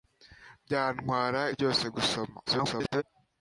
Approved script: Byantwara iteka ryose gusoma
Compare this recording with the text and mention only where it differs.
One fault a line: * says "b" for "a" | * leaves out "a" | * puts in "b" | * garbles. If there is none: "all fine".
* leaves out "iteka"
* garbles